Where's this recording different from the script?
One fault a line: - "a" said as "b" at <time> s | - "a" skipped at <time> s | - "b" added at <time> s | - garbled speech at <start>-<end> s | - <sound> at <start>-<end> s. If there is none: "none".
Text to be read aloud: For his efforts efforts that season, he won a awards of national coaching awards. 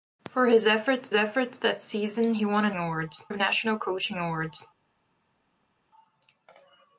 none